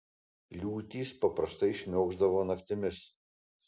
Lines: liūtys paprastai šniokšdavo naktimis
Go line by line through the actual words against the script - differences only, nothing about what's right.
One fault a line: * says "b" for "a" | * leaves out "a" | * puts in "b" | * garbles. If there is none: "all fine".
all fine